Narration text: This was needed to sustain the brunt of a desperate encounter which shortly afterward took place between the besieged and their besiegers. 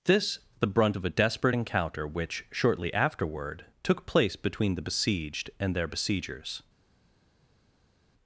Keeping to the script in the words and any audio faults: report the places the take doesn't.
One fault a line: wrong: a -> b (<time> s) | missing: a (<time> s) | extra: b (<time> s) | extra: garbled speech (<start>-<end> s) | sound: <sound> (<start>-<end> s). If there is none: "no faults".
missing: was needed to sustain (0.4 s)